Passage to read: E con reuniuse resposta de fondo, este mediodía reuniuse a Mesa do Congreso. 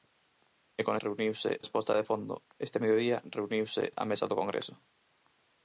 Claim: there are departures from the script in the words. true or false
false